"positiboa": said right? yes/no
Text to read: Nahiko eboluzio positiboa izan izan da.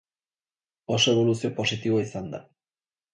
yes